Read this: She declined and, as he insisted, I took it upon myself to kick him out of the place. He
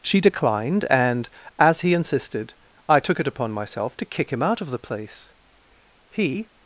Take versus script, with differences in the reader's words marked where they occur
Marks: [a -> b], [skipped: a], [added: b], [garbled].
She declined and, as he insisted, I took it upon myself to kick him out of the place. He